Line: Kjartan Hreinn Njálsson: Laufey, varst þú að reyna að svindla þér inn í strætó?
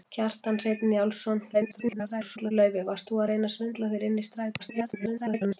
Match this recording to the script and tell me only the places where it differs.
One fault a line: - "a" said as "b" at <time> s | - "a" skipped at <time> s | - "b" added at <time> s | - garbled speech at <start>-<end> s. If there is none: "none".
- garbled speech at 1.5-2.5 s
- garbled speech at 4.6-5.6 s